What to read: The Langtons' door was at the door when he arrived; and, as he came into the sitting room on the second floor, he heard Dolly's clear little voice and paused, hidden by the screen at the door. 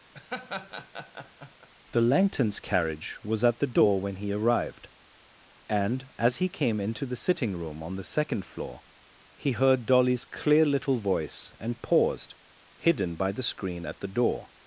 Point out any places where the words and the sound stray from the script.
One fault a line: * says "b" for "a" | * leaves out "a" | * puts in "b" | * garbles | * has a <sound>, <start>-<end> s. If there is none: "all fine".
* has a laugh, 0.1-1.7 s
* says "carriage" for "door"